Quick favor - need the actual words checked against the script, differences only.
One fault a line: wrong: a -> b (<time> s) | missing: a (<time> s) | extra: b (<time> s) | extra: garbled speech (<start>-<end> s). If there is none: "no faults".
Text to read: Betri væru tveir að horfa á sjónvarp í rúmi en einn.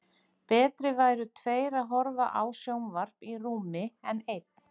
no faults